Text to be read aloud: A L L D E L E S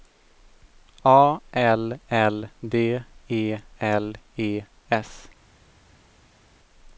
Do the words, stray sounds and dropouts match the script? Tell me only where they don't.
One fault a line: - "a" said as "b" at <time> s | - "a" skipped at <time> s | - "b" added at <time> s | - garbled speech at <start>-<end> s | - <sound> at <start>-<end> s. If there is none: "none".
none